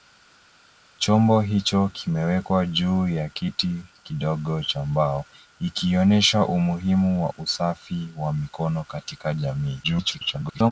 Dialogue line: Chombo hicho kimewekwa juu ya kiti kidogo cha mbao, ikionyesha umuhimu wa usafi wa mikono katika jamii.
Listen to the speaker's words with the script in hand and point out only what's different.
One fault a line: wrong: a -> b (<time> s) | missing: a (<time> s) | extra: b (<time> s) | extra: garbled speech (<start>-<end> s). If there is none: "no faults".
extra: garbled speech (9.8-10.7 s)